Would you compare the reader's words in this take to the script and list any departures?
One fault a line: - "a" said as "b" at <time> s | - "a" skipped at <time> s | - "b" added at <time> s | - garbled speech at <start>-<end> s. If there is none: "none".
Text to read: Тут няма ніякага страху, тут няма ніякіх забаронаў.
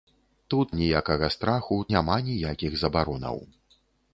- "няма" skipped at 0.7 s
- "тут" skipped at 1.8 s